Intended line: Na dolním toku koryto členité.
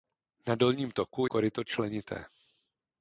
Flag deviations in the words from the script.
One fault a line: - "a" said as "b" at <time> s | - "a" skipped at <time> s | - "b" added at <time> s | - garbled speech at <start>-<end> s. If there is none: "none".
none